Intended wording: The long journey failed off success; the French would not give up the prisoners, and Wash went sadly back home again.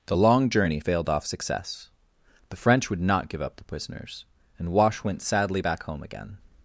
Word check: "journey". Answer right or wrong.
right